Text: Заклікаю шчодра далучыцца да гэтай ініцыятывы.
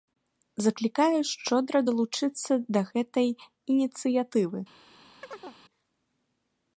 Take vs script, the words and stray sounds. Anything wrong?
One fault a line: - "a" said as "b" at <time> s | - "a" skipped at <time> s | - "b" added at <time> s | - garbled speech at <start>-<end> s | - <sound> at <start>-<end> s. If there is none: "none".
- chirp at 5.2-5.6 s